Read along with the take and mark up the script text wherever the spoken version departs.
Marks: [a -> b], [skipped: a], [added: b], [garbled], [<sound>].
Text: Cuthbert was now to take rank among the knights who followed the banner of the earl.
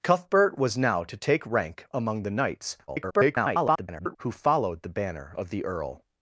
Cuthbert was now to take rank among the knights [garbled] who followed the banner of the earl.